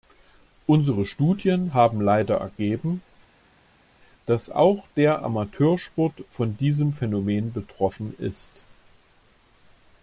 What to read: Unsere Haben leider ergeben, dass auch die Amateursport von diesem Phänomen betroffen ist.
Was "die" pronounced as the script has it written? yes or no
no